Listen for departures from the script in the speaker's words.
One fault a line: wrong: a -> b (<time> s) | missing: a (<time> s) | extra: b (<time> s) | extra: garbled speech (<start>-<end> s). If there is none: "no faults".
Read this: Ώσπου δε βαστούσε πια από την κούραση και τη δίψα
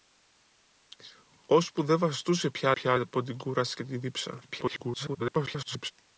extra: πια (2.7 s)
extra: garbled speech (4.5-5.9 s)